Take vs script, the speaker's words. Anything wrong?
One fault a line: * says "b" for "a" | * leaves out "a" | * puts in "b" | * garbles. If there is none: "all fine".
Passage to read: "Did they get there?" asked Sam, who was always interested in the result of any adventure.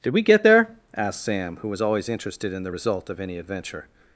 * says "we" for "they"